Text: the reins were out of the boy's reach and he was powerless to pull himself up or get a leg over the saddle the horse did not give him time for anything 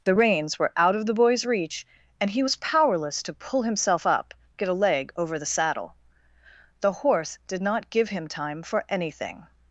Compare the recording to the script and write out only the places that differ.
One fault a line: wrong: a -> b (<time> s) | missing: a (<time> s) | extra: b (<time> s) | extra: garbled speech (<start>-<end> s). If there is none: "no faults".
missing: or (4.3 s)